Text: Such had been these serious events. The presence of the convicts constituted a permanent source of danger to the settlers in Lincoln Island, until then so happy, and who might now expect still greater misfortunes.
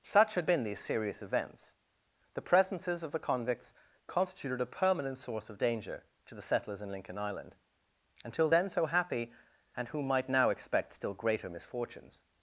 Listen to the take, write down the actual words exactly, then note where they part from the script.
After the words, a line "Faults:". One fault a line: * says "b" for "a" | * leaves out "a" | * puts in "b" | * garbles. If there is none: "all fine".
Such had been these serious events. The presences of the convicts constituted a permanent source of danger to the settlers in Lincoln Island, until then so happy, and who might now expect still greater misfortunes.
Faults:
* says "presences" for "presence"